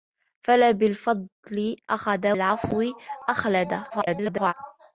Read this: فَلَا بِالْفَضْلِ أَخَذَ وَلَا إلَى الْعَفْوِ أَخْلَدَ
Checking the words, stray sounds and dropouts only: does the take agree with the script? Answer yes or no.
no